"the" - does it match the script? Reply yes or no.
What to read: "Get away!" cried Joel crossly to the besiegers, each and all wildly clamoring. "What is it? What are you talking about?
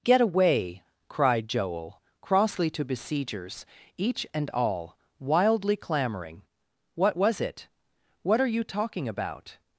no